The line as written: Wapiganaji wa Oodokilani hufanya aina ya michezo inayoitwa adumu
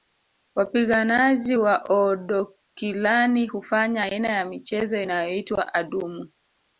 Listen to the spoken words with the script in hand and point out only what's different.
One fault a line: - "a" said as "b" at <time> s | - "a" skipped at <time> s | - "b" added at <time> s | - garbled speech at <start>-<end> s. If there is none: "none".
none